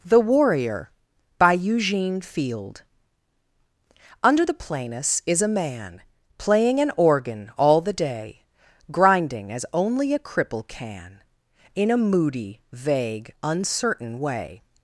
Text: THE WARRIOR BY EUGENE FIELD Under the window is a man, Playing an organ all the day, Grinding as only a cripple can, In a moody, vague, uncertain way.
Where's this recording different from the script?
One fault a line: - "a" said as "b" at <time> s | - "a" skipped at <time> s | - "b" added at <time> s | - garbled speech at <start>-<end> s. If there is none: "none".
- "window" said as "planus" at 4.5 s